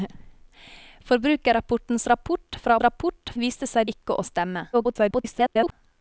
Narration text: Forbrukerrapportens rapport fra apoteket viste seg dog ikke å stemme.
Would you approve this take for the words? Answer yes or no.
no